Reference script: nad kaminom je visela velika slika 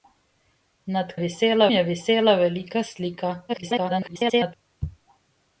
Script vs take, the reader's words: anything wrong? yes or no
yes